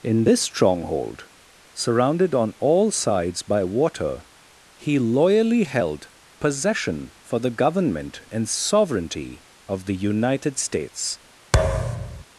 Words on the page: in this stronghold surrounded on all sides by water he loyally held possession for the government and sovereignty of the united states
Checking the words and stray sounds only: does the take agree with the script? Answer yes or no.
no